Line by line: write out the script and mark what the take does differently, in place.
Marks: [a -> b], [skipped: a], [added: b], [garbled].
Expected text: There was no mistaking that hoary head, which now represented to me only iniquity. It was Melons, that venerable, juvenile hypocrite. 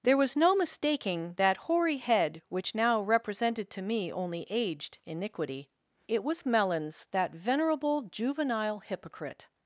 There was no mistaking that hoary head, which now represented to me only [added: aged] iniquity. It was Melons, that venerable, juvenile hypocrite.